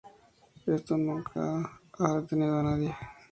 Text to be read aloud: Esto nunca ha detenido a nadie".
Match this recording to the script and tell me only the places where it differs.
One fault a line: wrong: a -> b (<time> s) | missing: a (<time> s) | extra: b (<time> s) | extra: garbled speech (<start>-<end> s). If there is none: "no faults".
no faults